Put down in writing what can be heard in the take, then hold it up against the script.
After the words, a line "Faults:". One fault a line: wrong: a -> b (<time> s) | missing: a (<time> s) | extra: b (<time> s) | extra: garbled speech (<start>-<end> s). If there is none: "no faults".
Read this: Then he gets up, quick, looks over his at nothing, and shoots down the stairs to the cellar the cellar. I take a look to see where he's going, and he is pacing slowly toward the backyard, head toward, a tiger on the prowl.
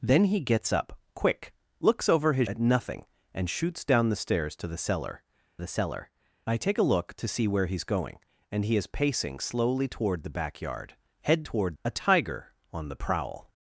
Then he gets up, quick, looks over his at nothing, and shoots down the stairs to the cellar the cellar. I take a look to see where he's going, and he is pacing slowly toward the backyard, head toward, a tiger on the prowl.
Faults:
no faults